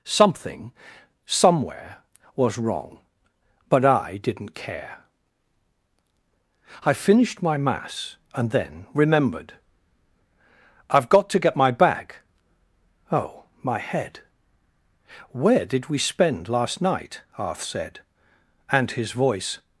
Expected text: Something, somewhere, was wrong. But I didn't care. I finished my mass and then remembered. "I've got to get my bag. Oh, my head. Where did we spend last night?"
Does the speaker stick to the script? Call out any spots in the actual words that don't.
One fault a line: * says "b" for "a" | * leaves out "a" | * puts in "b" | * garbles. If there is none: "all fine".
* puts in "Arth said and his voice"